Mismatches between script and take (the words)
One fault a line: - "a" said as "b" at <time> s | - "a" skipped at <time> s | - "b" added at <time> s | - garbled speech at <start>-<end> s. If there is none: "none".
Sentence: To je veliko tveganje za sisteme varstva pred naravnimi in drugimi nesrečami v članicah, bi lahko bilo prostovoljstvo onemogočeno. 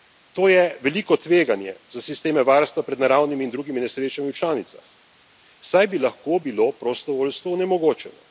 - "saj" added at 5.6 s